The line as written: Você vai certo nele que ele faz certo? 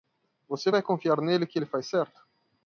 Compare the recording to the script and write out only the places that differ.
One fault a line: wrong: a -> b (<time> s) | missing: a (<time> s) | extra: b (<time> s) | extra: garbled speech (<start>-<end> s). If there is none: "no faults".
wrong: certo -> confiar (0.8 s)